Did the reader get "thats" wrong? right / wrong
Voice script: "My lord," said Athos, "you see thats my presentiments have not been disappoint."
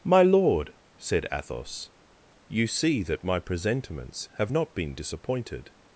wrong